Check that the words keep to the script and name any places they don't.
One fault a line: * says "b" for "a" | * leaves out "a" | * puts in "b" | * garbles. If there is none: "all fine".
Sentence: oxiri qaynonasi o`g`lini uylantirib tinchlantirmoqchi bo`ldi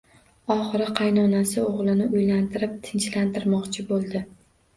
all fine